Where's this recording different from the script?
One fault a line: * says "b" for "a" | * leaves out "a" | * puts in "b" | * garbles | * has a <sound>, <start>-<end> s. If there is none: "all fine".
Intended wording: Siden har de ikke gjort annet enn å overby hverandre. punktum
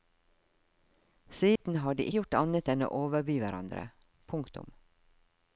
* has a dropout, 1.6-1.6 s
* leaves out "ikke"